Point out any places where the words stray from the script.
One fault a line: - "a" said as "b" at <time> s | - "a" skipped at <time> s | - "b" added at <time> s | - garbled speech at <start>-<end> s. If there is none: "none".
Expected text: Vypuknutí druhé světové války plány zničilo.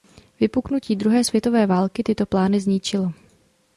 - "tyto" added at 2.0 s